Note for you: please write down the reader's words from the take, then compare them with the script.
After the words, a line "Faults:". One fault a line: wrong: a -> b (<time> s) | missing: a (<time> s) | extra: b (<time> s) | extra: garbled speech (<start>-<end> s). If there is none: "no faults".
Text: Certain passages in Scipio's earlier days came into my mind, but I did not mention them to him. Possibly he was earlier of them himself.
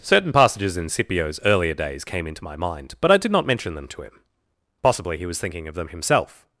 Certain passages in Scipio's earlier days came into my mind, but I did not mention them to him. Possibly he was thinking of them himself.
Faults:
wrong: earlier -> thinking (5.4 s)